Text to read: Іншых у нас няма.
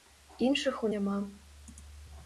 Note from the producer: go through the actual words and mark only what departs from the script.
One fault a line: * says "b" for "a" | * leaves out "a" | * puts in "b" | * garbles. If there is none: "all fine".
* leaves out "нас"